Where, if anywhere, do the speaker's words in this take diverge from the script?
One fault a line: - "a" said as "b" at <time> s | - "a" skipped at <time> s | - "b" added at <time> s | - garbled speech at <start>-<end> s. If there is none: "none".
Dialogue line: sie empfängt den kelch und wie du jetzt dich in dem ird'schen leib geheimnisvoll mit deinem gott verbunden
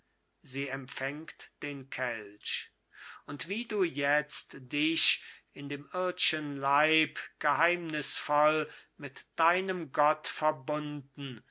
none